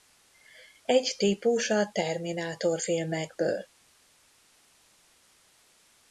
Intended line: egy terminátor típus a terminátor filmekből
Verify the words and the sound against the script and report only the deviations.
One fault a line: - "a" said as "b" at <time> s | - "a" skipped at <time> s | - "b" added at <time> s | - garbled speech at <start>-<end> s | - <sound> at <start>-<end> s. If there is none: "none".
- "terminátor" skipped at 1.1 s